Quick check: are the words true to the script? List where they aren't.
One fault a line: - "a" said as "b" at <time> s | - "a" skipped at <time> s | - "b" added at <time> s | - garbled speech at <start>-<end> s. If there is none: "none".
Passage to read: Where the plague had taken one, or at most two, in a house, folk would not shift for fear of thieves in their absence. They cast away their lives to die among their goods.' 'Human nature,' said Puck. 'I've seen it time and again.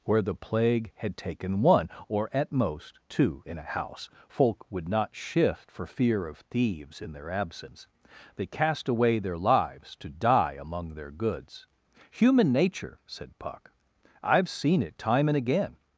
none